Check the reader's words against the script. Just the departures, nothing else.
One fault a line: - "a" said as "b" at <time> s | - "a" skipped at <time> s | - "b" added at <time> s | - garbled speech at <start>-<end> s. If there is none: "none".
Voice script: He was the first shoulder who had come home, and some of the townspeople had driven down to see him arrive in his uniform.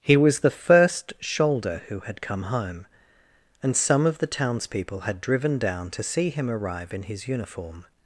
none